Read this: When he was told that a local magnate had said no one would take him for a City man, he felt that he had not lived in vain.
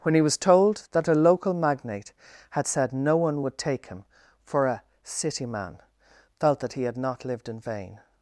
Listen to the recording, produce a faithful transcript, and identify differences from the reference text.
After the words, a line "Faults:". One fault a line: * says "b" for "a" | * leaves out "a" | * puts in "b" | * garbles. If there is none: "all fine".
When he was told that a local magnate had said no one would take him for a City man, felt that he had not lived in vain.
Faults:
* leaves out "he"